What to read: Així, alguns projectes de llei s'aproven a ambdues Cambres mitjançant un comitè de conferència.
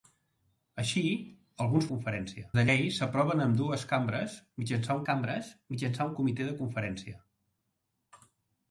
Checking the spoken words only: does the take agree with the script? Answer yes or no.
no